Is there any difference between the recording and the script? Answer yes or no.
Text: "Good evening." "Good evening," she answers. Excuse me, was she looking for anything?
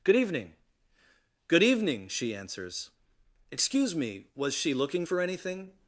no